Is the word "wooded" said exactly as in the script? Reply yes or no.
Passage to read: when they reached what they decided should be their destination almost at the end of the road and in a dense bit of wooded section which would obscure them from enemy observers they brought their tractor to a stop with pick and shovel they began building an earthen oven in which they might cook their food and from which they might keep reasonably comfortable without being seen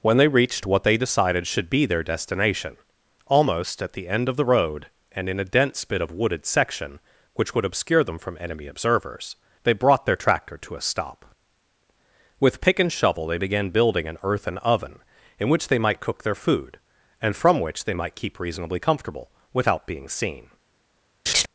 yes